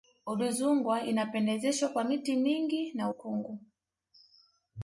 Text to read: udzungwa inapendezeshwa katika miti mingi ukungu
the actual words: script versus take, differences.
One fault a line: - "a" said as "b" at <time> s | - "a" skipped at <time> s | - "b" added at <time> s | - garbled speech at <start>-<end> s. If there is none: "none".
- "katika" said as "kwa" at 1.9 s
- "na" added at 2.9 s